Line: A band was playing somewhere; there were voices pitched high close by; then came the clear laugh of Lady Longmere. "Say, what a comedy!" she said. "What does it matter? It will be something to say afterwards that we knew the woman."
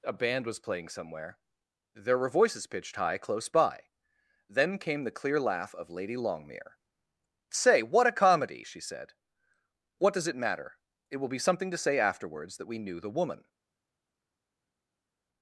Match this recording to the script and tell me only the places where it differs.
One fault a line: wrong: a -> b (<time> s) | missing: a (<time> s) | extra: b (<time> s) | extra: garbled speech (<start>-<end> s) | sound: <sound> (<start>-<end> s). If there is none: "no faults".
no faults